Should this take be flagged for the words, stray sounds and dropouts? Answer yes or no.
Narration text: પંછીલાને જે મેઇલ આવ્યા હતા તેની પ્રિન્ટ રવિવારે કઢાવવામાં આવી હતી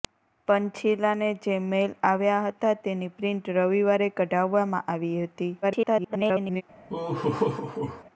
yes